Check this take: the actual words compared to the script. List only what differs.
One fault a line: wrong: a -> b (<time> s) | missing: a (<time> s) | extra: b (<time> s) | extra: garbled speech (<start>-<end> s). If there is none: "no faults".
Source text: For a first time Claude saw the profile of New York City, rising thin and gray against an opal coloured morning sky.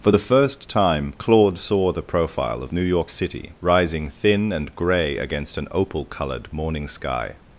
wrong: a -> the (0.1 s)